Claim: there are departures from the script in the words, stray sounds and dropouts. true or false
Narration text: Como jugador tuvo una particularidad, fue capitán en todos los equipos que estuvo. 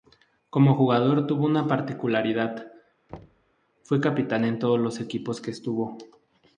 true